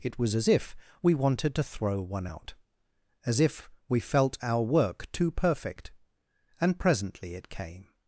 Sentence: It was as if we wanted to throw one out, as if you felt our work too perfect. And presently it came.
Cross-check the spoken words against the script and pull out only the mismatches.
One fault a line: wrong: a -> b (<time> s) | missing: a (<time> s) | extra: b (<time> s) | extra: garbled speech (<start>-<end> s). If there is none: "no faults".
wrong: you -> we (3.9 s)